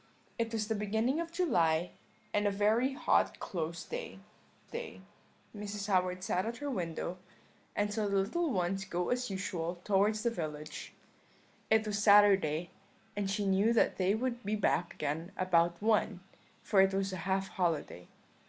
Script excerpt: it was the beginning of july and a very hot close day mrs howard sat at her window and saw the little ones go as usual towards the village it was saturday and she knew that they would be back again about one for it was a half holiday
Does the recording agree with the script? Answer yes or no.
no